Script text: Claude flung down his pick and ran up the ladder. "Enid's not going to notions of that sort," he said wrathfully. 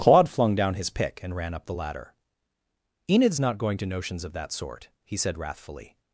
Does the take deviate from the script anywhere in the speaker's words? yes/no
no